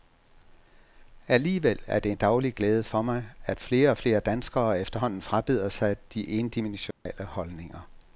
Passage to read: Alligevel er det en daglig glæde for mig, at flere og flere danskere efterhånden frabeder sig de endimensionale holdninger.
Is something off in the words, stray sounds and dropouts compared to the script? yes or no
yes